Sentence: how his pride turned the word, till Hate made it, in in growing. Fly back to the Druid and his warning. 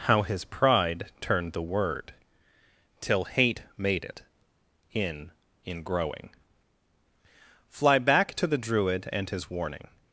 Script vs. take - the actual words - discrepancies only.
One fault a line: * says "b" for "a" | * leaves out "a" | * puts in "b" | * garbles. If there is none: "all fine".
all fine